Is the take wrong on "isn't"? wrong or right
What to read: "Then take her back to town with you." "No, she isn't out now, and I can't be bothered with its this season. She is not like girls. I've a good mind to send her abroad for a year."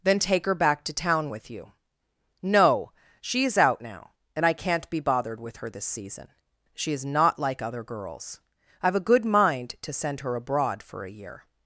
wrong